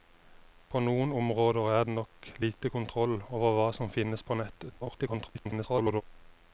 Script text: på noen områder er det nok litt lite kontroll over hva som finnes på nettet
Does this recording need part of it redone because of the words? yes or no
yes